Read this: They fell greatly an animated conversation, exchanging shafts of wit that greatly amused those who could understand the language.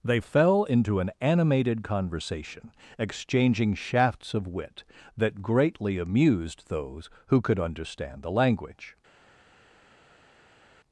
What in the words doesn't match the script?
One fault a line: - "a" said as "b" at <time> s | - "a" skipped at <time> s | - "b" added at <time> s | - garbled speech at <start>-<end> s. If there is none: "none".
- "greatly" said as "into" at 0.6 s